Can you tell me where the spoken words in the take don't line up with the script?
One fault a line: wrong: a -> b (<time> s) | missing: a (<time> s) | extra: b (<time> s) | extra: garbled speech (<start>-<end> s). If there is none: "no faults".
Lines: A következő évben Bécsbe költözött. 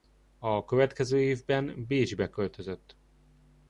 no faults